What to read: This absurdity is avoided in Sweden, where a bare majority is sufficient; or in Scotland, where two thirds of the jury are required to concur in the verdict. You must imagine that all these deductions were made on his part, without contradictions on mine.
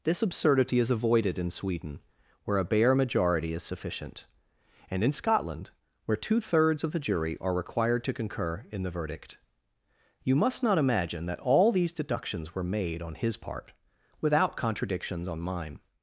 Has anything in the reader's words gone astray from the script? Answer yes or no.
yes